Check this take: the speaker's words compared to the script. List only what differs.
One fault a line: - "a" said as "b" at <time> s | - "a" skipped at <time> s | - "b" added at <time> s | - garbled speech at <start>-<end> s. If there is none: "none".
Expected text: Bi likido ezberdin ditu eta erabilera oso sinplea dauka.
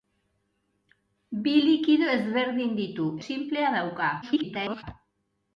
- "eta erabilera oso" skipped at 3.1 s
- garbled speech at 4.2-4.8 s